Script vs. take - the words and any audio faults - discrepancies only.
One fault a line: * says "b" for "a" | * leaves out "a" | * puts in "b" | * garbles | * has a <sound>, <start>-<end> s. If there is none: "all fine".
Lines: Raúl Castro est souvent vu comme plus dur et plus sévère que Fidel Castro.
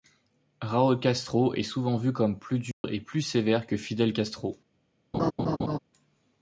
* has a dropout, 2.7-2.8 s
* has a laugh, 5.1-5.8 s